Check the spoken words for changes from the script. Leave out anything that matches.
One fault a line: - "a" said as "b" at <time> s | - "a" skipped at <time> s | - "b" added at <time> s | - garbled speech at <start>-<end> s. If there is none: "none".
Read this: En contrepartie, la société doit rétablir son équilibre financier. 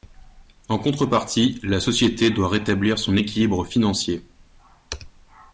none